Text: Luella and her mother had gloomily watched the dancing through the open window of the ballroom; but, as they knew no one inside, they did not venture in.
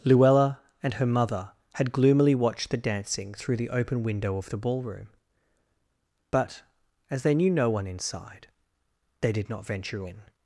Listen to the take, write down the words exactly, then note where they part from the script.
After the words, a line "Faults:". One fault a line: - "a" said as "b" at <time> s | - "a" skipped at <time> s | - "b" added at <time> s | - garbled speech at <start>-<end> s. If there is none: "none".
Luella and her mother had gloomily watched the dancing through the open window of the ballroom; but, as they knew no one inside, they did not venture in.
Faults:
none